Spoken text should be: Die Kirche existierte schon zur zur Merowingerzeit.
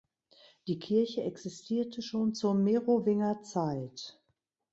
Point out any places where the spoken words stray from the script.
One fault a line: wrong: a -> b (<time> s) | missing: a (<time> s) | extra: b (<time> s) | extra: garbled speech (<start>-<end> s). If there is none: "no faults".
missing: zur (2.5 s)